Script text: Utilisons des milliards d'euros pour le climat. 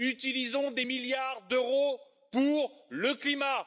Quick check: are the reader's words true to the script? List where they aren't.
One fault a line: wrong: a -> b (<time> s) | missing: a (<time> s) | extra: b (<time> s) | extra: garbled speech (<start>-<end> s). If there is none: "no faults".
no faults